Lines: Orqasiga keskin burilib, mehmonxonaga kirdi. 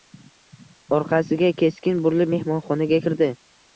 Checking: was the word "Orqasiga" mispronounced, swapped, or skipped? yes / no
no